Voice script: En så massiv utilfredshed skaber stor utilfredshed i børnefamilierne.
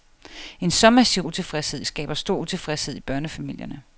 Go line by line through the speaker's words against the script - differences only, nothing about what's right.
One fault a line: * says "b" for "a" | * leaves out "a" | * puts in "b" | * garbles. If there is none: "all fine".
all fine